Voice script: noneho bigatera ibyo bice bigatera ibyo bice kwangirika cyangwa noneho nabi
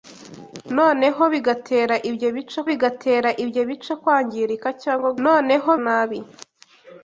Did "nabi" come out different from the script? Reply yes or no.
no